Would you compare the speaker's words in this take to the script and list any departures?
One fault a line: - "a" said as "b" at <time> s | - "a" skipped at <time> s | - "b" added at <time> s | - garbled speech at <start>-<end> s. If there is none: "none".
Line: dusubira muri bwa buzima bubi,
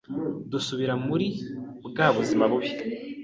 none